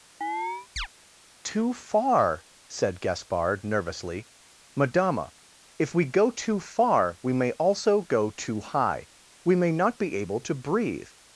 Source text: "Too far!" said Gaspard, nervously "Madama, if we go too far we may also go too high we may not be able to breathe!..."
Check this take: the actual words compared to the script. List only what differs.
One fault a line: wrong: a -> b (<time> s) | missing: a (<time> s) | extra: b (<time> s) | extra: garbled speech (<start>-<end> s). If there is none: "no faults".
no faults